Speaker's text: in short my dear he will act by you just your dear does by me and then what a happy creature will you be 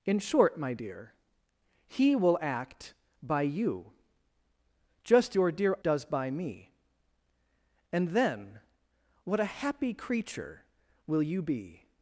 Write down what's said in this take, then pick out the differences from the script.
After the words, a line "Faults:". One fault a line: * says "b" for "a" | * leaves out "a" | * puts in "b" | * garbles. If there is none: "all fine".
in short my dear he will act by you just your dear does by me and then what a happy creature will you be
Faults:
all fine